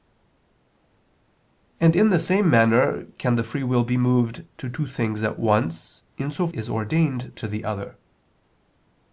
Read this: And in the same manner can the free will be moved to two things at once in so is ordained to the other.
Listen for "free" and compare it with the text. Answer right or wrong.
right